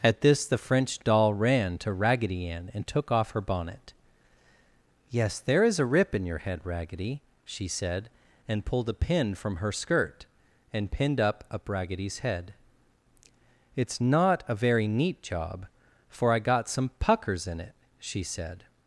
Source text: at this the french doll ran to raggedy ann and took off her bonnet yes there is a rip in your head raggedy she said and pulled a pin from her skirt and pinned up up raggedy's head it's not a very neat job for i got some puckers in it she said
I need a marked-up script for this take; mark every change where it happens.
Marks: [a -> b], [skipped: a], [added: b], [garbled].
at this the french doll ran to raggedy ann and took off her bonnet yes there is a rip in your head raggedy she said and pulled a pin from her skirt and pinned up up raggedy's head it's not a very neat job for i got some puckers in it she said